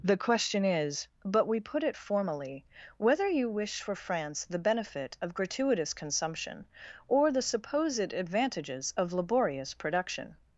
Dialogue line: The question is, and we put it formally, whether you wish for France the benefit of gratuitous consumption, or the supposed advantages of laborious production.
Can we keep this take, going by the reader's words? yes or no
no